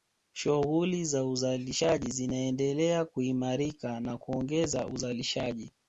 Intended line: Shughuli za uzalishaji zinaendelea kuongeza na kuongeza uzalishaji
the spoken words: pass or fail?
fail